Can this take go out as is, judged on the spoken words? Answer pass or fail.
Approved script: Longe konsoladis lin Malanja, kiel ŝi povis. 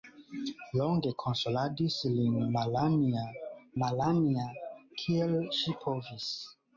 fail